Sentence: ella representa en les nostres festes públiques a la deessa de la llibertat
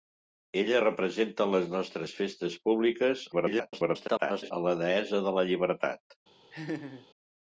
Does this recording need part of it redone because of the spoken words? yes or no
yes